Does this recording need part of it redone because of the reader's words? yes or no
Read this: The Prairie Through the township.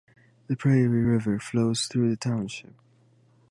yes